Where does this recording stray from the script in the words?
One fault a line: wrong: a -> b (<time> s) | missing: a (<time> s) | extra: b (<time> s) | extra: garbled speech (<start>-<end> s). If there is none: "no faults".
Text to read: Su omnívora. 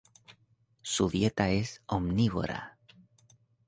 extra: dieta es (1.1 s)